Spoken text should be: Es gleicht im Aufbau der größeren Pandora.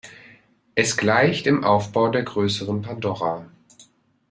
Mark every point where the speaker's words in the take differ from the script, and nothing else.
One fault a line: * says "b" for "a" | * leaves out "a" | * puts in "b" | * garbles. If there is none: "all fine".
all fine